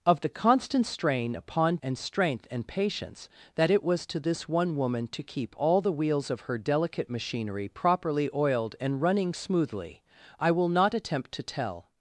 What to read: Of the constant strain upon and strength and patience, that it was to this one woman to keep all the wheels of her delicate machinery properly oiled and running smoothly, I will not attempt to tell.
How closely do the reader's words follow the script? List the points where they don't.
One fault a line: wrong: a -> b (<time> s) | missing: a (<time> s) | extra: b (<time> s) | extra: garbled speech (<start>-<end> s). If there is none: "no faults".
no faults